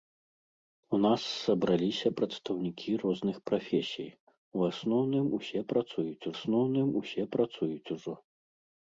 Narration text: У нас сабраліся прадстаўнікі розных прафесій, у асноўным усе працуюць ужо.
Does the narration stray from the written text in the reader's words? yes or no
yes